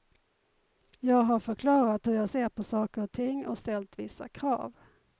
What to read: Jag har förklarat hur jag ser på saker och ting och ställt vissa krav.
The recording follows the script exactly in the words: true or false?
true